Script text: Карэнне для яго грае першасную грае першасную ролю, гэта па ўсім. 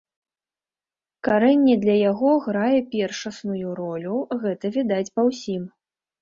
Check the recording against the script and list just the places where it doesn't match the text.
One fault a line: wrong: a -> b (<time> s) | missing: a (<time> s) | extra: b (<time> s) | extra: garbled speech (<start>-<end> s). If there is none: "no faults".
missing: грае першасную (3.7 s)
extra: відаць (4.8 s)